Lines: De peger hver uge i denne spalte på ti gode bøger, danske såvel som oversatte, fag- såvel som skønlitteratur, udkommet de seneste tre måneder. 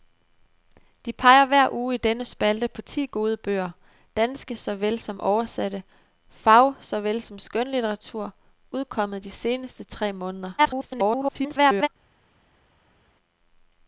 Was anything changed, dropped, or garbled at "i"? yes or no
no